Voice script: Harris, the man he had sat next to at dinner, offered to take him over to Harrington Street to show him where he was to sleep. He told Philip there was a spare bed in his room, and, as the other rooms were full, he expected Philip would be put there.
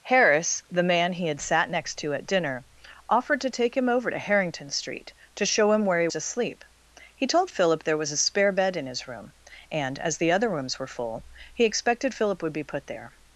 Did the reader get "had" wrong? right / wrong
right